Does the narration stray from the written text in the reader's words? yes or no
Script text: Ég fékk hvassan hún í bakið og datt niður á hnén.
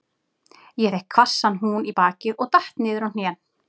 no